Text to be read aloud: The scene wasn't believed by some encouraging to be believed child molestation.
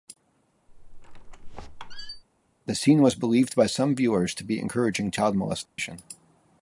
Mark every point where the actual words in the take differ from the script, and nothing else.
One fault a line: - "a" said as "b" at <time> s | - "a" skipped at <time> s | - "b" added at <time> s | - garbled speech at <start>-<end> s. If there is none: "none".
- "wasn't" said as "was" at 3.0 s
- "encouraging" said as "viewers" at 4.0 s
- "believed" said as "encouraging" at 4.6 s